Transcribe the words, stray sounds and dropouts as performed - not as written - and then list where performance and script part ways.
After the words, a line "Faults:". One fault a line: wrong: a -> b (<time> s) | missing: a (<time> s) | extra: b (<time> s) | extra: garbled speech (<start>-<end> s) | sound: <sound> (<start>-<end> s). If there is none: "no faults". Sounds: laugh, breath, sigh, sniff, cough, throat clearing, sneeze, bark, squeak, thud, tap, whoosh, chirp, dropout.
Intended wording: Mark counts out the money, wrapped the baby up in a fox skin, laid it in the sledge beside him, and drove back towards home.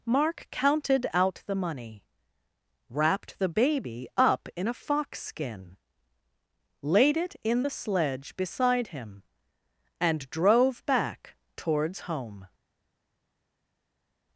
Mark counted out the money, wrapped the baby up in a fox skin, laid it in the sledge beside him, and drove back towards home.
Faults:
wrong: counts -> counted (0.5 s)